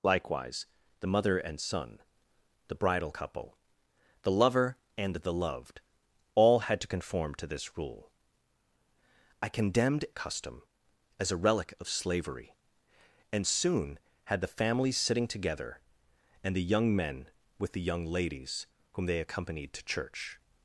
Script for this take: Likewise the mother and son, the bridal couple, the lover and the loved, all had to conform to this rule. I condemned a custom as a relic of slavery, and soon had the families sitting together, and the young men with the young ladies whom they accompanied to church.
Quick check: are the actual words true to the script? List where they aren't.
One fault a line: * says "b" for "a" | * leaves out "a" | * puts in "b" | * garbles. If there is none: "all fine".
all fine